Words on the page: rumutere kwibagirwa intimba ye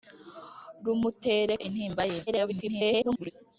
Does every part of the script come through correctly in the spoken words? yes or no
no